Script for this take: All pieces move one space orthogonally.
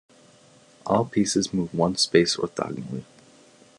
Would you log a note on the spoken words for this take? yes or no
no